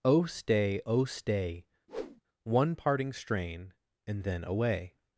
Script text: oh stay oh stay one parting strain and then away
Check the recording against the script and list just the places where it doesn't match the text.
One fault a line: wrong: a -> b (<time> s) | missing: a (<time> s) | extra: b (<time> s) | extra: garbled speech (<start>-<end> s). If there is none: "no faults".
no faults